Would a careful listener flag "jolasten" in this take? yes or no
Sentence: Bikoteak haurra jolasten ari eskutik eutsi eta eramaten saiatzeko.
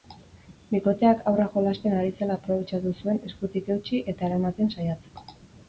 no